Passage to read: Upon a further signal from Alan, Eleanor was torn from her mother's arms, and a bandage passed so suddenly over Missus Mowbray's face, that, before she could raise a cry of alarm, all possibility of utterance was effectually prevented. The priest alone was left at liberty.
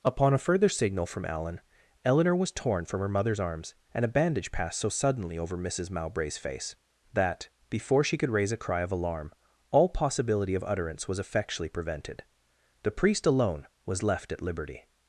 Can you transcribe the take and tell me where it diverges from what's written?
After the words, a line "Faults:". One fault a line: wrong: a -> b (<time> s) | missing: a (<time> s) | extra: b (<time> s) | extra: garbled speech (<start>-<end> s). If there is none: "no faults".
Upon a further signal from Alan, Eleanor was torn from her mother's arms, and a bandage passed so suddenly over Missus Mowbray's face, that, before she could raise a cry of alarm, all possibility of utterance was effectually prevented. The priest alone was left at liberty.
Faults:
no faults